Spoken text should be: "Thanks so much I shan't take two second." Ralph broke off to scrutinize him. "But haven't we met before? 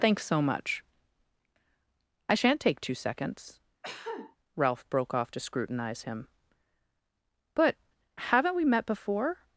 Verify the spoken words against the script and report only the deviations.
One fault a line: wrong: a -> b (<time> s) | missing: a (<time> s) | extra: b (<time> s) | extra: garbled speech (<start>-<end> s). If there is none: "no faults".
wrong: second -> seconds (2.9 s)